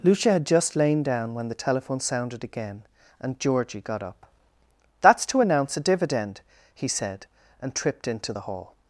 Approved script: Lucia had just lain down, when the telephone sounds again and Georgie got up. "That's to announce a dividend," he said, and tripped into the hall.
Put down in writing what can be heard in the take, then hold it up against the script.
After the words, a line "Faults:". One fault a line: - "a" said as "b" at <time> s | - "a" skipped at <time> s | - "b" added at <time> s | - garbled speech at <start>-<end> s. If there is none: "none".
Lucia had just lain down, when the telephone sounded again and Georgie got up. "That's to announce a dividend," he said, and tripped into the hall.
Faults:
- "sounds" said as "sounded" at 2.0 s